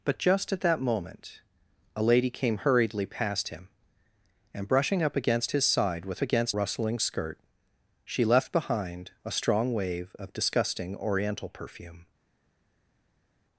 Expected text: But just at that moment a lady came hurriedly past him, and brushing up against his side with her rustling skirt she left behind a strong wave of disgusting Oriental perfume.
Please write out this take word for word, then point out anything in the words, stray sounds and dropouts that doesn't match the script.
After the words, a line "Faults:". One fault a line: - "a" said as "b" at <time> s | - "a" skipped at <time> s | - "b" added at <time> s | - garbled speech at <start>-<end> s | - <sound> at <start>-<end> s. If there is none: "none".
But just at that moment a lady came hurriedly past him, and brushing up against his side with against rustling skirt she left behind a strong wave of disgusting Oriental perfume.
Faults:
- "her" said as "against" at 6.2 s